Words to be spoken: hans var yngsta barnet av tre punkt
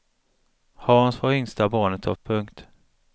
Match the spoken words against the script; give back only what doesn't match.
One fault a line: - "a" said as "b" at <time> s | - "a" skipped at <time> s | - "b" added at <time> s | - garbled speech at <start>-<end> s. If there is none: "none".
- "tre" skipped at 2.1 s